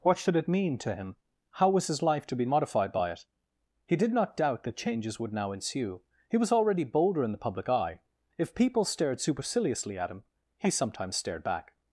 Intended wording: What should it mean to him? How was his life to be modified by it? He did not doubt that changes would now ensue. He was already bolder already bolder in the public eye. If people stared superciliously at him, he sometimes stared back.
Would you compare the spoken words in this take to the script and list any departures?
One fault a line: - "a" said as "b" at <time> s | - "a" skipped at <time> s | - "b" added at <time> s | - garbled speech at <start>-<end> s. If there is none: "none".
- "already bolder" skipped at 7.2 s